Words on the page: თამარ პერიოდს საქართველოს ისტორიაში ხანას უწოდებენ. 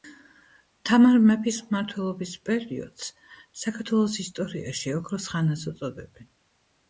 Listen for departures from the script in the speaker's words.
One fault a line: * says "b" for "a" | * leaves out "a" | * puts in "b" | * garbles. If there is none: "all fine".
* puts in "მეფის მმართველობის"
* puts in "ოქროს"